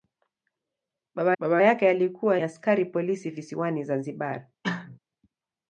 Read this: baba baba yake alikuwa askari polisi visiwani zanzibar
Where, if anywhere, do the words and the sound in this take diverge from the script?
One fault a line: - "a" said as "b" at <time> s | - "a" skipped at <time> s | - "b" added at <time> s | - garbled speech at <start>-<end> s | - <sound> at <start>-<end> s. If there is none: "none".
- cough at 4.6-5.0 s